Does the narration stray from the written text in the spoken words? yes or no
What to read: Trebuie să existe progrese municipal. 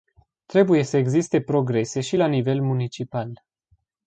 yes